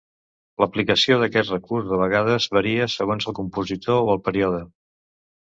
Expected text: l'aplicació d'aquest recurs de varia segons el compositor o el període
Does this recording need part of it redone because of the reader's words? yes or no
yes